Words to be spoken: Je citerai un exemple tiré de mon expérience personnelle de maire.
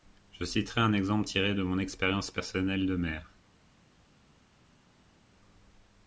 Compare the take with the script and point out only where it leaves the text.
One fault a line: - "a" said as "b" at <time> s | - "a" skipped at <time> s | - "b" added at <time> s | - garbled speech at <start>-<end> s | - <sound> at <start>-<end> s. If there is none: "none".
none